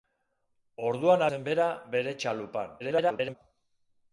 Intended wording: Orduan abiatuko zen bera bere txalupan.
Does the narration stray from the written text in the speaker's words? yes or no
yes